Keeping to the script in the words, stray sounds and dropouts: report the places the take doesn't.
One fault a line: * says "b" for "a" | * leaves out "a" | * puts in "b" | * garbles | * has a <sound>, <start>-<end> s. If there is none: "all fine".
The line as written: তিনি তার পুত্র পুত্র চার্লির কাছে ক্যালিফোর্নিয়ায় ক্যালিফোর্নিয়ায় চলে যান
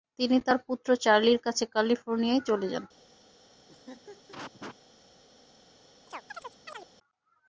* leaves out "পুত্র"
* leaves out "ক্যালিফোর্নিয়ায়"
* has a laugh, 3.7-4.8 s
* has a chirp, 6.1-6.9 s